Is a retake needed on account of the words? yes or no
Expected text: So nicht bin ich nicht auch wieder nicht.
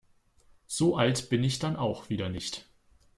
yes